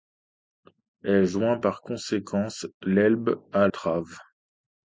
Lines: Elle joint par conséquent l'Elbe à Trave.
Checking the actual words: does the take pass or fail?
pass